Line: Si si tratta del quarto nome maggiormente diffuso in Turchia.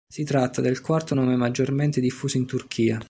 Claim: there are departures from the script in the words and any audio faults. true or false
true